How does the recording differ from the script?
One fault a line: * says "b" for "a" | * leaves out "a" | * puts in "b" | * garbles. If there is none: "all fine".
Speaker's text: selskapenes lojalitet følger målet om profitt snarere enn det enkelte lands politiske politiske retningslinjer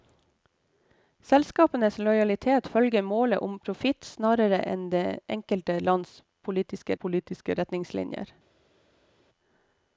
all fine